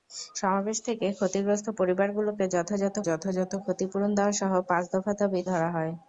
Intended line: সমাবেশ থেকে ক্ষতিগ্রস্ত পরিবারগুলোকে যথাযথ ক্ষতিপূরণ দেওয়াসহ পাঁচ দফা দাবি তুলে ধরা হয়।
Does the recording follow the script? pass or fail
fail